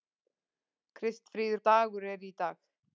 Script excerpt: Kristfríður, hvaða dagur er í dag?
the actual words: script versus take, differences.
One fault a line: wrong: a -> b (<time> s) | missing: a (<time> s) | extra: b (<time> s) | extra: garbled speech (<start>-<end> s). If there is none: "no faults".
missing: hvaða (1.6 s)